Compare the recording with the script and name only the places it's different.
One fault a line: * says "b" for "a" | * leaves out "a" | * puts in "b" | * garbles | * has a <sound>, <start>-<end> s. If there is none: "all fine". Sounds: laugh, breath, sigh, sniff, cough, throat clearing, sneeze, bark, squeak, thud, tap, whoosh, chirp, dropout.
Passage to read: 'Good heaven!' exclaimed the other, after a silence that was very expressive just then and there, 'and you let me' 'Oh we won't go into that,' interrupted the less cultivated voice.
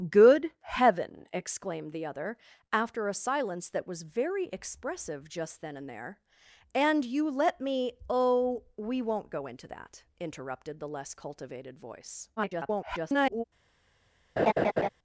* garbles
* has a laugh, 14.4-14.9 s